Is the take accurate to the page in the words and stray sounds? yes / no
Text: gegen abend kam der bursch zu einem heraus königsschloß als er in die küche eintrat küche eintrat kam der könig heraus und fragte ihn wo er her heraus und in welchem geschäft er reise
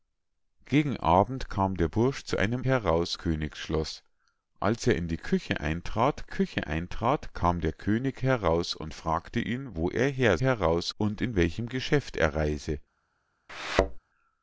no